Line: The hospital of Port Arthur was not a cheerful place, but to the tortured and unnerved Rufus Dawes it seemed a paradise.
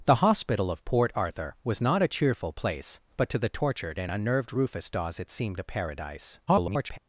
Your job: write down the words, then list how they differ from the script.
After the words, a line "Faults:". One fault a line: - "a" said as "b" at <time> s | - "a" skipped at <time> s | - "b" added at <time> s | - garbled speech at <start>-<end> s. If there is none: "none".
The hospital of Port Arthur was not a cheerful place, but to the tortured and unnerved Rufus Dawes it seemed a paradise. [garbled]
Faults:
- garbled speech at 6.5-7.0 s